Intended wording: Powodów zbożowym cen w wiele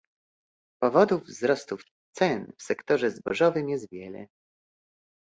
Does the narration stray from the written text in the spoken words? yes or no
yes